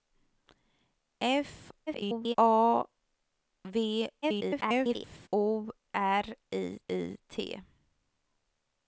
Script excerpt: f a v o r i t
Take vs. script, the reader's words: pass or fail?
fail